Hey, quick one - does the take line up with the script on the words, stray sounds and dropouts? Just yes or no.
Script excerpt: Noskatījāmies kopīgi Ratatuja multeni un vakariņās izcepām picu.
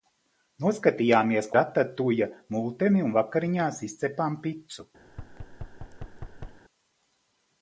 no